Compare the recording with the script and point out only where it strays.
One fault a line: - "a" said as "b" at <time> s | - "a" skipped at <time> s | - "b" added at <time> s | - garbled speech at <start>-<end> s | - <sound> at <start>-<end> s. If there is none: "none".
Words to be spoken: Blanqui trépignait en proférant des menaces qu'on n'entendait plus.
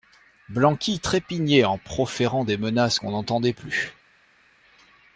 none